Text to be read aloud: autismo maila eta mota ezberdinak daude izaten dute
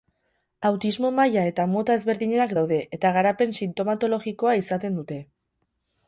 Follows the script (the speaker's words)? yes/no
no